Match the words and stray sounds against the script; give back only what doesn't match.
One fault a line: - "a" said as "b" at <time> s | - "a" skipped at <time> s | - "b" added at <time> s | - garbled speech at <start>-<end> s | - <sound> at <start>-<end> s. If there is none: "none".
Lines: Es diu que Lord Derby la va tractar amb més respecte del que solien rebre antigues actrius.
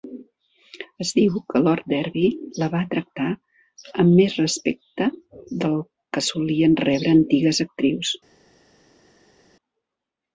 none